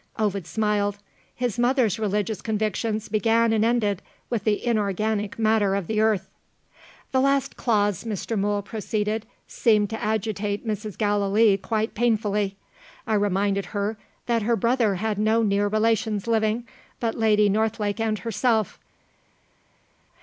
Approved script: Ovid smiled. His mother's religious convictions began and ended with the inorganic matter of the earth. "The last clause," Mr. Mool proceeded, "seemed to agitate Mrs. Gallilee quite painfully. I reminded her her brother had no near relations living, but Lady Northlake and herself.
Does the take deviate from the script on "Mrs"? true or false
false